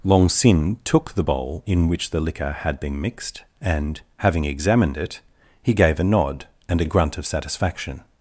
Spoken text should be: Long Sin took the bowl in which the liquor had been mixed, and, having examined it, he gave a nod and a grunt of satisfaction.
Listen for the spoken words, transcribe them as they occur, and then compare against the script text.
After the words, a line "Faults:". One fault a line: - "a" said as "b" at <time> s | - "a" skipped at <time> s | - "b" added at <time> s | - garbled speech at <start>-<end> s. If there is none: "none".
Long Sin took the bowl in which the liquor had been mixed, and, having examined it, he gave a nod and a grunt of satisfaction.
Faults:
none